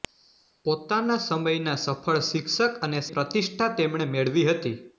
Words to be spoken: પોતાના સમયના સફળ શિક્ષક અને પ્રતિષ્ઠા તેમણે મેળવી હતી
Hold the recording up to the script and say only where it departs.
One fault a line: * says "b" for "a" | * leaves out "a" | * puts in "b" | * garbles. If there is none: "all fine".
all fine